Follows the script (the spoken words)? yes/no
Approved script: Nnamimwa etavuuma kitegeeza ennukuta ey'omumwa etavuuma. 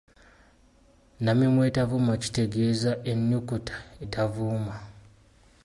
no